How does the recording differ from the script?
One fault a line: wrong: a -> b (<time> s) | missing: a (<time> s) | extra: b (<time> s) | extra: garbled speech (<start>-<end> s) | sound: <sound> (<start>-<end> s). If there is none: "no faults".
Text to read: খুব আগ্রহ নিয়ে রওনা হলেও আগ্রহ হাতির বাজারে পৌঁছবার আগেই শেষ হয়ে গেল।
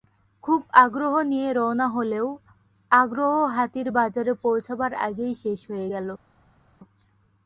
no faults